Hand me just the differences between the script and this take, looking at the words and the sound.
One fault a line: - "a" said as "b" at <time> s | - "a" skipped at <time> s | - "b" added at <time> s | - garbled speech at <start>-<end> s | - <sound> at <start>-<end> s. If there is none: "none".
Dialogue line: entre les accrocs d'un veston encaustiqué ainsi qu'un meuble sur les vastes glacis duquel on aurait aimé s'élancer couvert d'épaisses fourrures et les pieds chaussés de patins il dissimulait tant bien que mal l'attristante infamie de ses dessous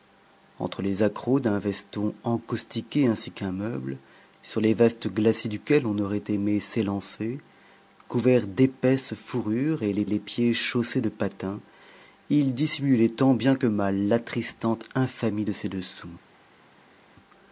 - "les" added at 10.1 s